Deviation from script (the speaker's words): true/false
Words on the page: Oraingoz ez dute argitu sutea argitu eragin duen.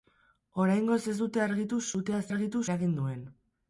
false